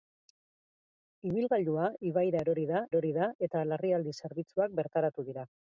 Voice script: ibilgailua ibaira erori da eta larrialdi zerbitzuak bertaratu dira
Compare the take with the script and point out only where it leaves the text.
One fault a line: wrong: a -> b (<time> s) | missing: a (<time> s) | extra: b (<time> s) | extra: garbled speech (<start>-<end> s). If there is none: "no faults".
extra: erori da (2.9 s)